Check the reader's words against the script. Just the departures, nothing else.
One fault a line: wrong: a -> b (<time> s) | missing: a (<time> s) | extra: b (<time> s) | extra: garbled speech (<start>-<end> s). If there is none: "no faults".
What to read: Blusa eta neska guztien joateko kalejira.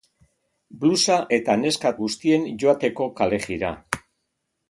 no faults